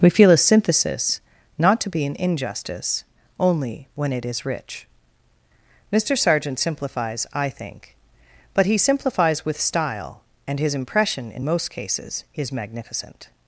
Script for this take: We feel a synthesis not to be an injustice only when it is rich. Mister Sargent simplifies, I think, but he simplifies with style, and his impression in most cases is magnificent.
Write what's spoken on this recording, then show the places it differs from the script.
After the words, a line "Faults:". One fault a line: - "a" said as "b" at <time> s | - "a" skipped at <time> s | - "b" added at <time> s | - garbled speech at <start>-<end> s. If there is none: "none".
We feel a synthesis not to be an injustice only when it is rich. Mister Sargent simplifies, I think, but he simplifies with style, and his impression in most cases is magnificent.
Faults:
none